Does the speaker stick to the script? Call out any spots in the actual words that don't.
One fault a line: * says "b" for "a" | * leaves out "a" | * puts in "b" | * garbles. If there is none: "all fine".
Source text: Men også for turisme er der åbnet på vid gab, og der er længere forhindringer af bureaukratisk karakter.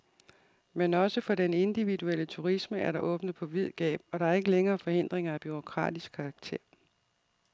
* puts in "den individuelle"
* puts in "ikke"